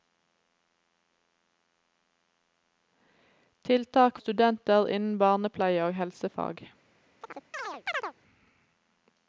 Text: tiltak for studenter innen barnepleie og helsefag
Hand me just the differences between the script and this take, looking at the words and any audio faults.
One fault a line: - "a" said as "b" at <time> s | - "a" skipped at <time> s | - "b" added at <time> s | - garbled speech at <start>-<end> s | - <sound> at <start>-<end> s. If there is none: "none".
- "for" skipped at 4.2 s
- chirp at 7.2-8.1 s